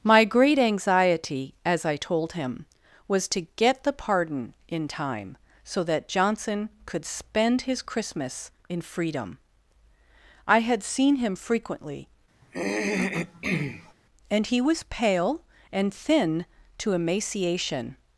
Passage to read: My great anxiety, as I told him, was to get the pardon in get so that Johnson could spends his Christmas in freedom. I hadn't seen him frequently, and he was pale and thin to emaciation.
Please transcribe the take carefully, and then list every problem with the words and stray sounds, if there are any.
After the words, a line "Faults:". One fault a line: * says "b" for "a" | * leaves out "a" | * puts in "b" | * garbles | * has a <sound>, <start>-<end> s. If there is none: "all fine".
My great anxiety, as I told him, was to get the pardon in time so that Johnson could spend his Christmas in freedom. I had seen him frequently, and he was pale and thin to emaciation.
Faults:
* says "time" for "get"
* says "spend" for "spends"
* says "had" for "hadn't"
* has a throat clearing, 12.4-13.9 s